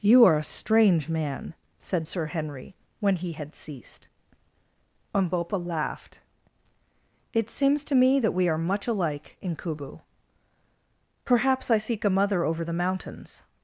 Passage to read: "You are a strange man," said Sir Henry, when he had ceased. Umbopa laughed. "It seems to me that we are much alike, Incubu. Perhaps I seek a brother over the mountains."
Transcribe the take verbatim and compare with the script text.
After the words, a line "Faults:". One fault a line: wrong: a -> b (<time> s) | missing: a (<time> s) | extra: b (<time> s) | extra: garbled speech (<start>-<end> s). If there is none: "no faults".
"You are a strange man," said Sir Henry, when he had ceased. Umbopa laughed. "It seems to me that we are much alike, Incubu. Perhaps I seek a mother over the mountains."
Faults:
wrong: brother -> mother (12.1 s)